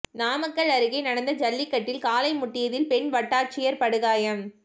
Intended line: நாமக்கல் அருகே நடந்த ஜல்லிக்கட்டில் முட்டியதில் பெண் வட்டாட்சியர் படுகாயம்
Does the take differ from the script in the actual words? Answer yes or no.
yes